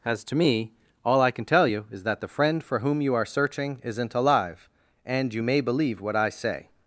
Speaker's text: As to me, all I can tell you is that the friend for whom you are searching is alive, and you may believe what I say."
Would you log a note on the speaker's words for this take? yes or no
yes